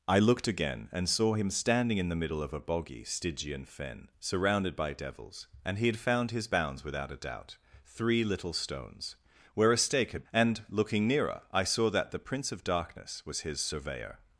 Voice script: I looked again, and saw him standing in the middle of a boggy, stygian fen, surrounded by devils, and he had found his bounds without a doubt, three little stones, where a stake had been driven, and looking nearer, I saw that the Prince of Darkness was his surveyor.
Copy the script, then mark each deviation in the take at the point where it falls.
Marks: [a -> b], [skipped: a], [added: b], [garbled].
I looked again, and saw him standing in the middle of a boggy, stygian fen, surrounded by devils, and he had found his bounds without a doubt, three little stones, where a stake had [skipped: been driven,] and looking nearer, I saw that the Prince of Darkness was his surveyor.